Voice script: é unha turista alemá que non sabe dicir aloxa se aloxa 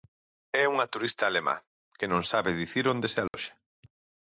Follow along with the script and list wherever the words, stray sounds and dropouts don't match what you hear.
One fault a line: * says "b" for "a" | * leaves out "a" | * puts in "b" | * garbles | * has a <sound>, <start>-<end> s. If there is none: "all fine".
* says "onde" for "aloxa"
* has a dropout, 3.3-3.3 s